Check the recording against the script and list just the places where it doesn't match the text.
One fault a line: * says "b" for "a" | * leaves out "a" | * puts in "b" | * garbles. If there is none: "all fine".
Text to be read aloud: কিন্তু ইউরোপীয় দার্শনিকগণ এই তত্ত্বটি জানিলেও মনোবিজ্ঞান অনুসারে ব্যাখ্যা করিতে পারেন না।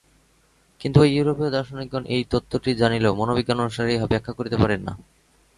* puts in "ঐ"
* puts in "ইহা"